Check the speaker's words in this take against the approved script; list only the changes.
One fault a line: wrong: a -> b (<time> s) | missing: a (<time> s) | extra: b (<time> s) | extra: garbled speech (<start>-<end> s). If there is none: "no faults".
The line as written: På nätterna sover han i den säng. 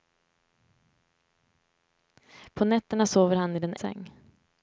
no faults